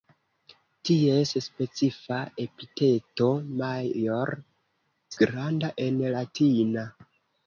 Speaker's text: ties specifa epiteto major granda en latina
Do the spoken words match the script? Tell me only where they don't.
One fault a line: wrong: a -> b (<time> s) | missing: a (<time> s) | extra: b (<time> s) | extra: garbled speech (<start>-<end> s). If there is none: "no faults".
no faults